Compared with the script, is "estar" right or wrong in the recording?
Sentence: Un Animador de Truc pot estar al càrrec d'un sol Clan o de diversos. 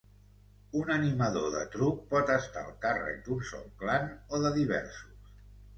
right